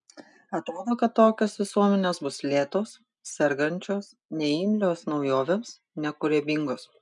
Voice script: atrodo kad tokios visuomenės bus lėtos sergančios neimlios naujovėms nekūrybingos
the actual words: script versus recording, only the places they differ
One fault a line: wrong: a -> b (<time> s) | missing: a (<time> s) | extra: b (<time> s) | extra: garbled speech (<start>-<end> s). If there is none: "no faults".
no faults